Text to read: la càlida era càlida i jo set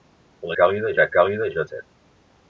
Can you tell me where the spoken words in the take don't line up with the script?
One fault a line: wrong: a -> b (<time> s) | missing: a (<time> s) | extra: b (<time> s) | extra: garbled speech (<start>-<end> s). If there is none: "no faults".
no faults